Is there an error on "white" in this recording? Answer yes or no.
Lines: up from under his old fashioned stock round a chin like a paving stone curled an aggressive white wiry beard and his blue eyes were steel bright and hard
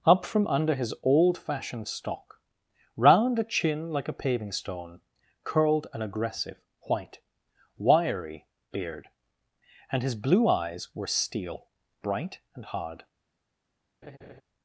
no